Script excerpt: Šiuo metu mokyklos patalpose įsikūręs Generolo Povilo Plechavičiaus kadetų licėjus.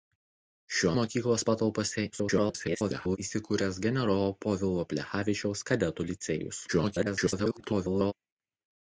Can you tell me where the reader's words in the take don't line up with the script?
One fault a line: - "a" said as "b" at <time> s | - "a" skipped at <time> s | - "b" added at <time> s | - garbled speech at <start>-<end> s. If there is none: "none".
- "metu" skipped at 0.9 s
- garbled speech at 2.1-3.2 s
- garbled speech at 6.7-8.1 s